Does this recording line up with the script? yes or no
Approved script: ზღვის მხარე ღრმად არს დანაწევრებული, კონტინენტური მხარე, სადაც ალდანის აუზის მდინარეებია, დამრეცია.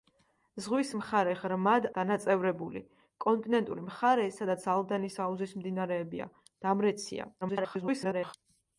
no